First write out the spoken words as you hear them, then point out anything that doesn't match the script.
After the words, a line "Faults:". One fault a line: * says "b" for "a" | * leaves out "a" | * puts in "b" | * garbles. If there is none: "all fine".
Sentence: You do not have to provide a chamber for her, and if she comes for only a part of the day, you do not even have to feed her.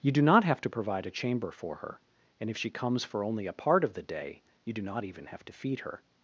You do not have to provide a chamber for her, and if she comes for only a part of the day, you do not even have to feed her.
Faults:
all fine